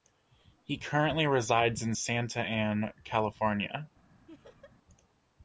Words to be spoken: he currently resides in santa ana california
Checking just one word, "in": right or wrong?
right